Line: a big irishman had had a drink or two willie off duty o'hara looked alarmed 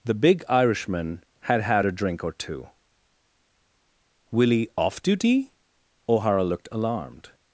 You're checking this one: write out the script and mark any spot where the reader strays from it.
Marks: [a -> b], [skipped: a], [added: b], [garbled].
[a -> the] big irishman had had a drink or two willie off duty o'hara looked alarmed